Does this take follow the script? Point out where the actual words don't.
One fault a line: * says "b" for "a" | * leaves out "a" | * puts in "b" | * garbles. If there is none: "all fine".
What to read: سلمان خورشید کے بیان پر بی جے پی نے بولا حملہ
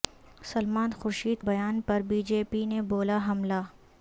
* leaves out "کے"